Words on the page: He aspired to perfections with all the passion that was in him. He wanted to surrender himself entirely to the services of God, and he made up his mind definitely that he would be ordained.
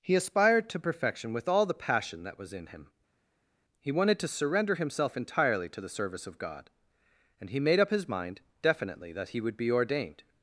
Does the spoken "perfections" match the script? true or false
false